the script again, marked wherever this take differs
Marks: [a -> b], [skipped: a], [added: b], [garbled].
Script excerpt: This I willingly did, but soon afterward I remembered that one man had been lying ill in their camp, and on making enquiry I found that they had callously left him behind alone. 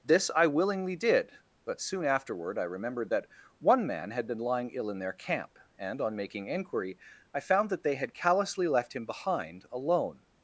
This I willingly did, but soon afterward I remembered that one man had been lying ill in their camp, and on making enquiry I found that they had callously left him behind alone.